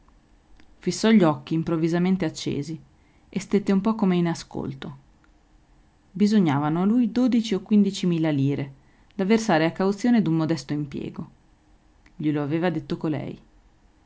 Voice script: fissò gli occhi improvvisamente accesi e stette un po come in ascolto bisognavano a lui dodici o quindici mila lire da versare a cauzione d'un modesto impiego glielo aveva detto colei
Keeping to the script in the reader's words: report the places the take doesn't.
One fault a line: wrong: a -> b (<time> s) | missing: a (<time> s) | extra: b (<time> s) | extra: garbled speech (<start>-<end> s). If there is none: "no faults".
no faults